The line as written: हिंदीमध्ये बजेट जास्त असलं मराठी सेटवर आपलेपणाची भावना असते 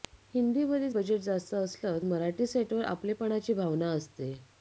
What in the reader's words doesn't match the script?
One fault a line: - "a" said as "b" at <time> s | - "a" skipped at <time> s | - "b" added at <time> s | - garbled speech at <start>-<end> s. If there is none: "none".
none